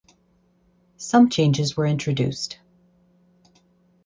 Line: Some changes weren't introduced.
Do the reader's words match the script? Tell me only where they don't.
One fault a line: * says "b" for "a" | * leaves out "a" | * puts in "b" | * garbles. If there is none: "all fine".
* says "were" for "weren't"